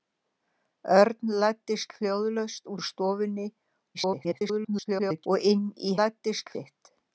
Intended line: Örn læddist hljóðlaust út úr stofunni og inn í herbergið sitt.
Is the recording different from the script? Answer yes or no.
yes